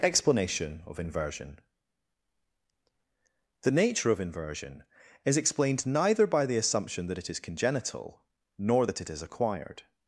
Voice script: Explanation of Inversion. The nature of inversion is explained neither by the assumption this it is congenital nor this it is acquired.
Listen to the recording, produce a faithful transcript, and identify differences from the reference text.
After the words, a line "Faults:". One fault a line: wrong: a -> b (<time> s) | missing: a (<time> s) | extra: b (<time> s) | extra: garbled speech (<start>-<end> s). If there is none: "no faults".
Explanation of Inversion. The nature of inversion is explained neither by the assumption that it is congenital nor that it is acquired.
Faults:
wrong: this -> that (7.0 s)
wrong: this -> that (8.8 s)